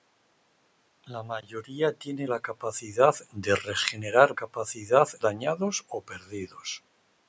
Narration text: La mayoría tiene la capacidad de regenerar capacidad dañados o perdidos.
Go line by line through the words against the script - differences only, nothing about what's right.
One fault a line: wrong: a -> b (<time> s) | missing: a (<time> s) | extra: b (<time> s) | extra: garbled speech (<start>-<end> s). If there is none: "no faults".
no faults